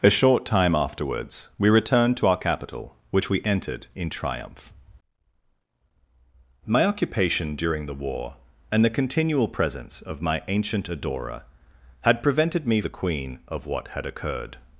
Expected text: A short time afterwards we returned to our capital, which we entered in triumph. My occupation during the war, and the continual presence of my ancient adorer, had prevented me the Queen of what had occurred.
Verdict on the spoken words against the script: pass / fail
pass